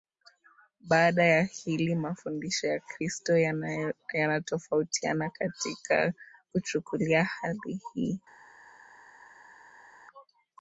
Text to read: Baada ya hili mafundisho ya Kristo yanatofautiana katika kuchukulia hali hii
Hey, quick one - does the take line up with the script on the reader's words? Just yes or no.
yes